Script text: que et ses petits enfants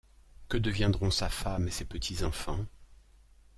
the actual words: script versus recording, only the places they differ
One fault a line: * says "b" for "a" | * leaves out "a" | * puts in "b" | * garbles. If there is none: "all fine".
* puts in "deviendront sa femme"